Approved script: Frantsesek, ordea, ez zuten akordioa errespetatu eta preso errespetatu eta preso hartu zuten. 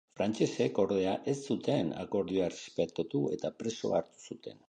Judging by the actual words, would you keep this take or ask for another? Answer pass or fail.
fail